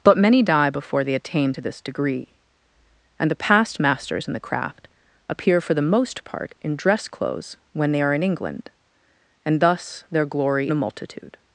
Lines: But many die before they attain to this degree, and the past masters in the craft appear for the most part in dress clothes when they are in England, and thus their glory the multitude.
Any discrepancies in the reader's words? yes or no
no